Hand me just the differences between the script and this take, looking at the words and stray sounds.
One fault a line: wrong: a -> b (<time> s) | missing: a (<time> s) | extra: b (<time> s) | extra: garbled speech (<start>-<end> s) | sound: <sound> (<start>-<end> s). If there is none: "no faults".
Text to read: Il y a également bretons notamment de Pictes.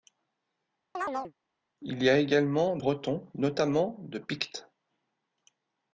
sound: chirp (0.9-1.3 s)